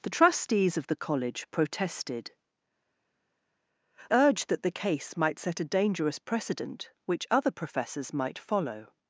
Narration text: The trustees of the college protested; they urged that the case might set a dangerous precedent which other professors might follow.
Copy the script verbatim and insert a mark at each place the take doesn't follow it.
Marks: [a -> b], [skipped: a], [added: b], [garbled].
The trustees of the college protested; [skipped: they] urged that the case might set a dangerous precedent which other professors might follow.